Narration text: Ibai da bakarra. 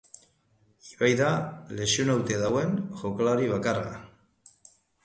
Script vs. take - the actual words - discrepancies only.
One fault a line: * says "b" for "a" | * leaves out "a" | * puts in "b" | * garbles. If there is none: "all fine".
* puts in "lesionatuta dagoen jokalari"